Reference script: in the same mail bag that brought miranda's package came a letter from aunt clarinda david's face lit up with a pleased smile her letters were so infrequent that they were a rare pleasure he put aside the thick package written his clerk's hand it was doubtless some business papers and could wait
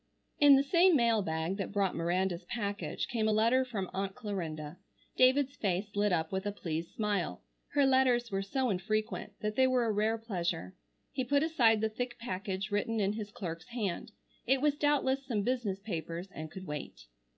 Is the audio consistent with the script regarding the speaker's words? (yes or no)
no